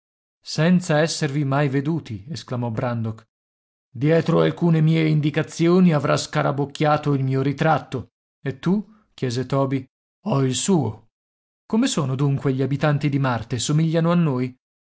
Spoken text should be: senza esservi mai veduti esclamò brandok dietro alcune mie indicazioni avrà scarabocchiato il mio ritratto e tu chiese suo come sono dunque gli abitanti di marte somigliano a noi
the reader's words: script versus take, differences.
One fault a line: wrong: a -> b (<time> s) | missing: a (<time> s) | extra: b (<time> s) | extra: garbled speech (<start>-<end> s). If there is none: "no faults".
extra: toby ho il (9.4 s)